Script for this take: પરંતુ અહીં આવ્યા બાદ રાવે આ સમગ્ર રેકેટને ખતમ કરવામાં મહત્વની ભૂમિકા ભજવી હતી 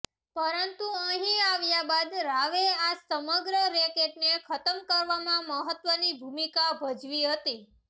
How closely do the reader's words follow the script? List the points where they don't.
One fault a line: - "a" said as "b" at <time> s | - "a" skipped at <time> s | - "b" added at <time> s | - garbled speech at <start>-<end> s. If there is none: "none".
none